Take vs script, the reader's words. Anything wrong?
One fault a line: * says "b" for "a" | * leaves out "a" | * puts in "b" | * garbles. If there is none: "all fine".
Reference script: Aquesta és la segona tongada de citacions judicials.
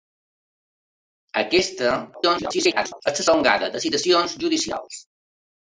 * garbles
* leaves out "segona"